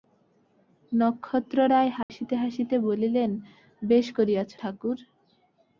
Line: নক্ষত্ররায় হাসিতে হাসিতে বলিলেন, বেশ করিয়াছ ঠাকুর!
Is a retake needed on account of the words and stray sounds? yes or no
yes